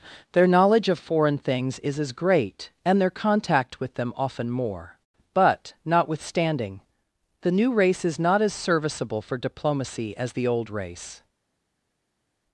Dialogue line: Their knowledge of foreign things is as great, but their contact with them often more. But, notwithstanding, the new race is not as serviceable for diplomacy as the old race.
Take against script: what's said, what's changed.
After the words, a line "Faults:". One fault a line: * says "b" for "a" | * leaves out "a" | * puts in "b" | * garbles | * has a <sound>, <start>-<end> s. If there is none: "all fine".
Their knowledge of foreign things is as great, and their contact with them often more. But, notwithstanding, the new race is not as serviceable for diplomacy as the old race.
Faults:
* says "and" for "but"